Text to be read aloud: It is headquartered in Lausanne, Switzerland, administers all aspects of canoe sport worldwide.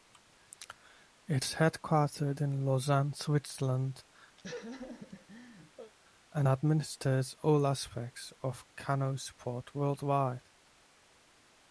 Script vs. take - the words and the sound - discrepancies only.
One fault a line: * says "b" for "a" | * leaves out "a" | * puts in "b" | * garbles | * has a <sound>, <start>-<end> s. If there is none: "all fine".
* has a laugh, 4.4-5.9 s
* puts in "and"